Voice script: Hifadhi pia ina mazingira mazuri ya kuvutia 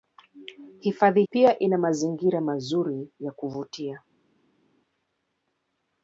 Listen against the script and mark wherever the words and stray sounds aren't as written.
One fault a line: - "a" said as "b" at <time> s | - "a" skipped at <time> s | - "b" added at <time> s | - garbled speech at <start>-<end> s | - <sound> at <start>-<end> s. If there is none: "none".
none